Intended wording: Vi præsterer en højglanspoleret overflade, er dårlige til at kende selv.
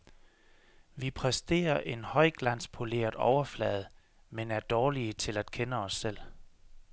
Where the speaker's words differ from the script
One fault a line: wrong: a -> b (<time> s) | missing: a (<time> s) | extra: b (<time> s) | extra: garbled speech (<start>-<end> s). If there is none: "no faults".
extra: men (4.3 s)
extra: os (5.8 s)